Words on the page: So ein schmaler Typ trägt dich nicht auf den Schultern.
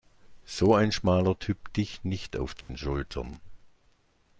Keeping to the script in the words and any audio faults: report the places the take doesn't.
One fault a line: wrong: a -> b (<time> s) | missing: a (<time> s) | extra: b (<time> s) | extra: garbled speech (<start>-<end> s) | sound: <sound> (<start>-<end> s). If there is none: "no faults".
missing: trägt (1.8 s)
sound: dropout (2.6-2.7 s)